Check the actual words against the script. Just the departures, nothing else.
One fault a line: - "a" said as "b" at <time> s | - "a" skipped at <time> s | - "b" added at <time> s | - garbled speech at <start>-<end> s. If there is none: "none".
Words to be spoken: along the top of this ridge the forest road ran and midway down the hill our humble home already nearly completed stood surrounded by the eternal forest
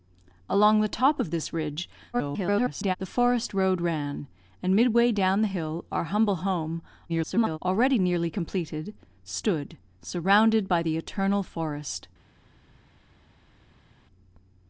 - garbled speech at 2.1-3.0 s
- garbled speech at 7.1-7.6 s